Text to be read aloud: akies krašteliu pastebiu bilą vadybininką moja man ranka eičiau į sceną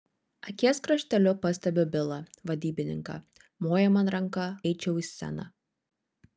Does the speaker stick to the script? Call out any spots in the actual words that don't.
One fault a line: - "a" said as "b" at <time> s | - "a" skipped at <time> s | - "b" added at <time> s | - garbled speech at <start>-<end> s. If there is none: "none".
none